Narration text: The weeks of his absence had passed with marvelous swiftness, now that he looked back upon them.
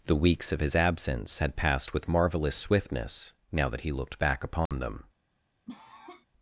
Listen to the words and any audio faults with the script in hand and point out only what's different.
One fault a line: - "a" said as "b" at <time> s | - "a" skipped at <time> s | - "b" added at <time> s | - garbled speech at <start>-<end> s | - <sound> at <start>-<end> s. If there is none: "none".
- dropout at 4.7-4.7 s
- cough at 5.7-6.3 s